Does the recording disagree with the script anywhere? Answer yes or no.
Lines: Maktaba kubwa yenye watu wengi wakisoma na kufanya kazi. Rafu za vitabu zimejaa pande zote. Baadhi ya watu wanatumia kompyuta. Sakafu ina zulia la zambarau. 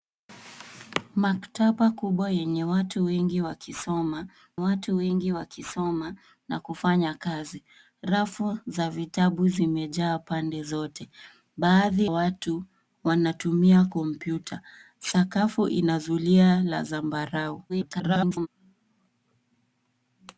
yes